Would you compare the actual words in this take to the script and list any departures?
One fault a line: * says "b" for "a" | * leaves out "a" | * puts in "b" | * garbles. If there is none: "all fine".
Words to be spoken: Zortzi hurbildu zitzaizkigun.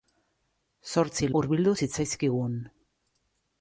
all fine